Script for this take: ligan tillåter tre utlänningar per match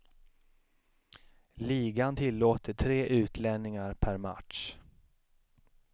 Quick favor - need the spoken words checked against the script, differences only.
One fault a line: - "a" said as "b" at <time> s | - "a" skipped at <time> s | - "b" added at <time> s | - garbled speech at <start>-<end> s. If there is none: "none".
none